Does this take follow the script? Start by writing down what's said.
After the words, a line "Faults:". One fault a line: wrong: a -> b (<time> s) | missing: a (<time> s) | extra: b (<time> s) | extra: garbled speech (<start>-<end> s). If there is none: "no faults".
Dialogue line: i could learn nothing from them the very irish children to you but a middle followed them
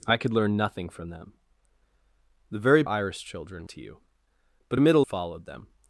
i could learn nothing from them the very irish children to you but a middle followed them
Faults:
no faults